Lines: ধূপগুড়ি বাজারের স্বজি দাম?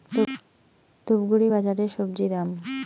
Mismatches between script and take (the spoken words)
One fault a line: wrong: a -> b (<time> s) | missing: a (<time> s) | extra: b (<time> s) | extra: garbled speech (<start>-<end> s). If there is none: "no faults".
no faults